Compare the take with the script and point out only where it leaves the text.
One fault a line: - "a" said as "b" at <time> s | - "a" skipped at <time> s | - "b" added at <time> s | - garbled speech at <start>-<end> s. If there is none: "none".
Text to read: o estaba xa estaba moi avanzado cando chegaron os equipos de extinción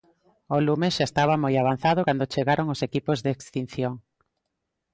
- "estaba" said as "lume" at 0.7 s